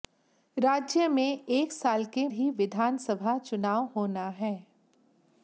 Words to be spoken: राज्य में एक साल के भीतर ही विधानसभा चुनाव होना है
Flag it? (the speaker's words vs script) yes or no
yes